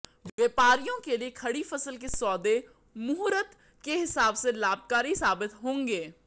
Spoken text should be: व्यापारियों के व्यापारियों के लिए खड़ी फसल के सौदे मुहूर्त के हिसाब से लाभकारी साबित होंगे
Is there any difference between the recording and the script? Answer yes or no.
yes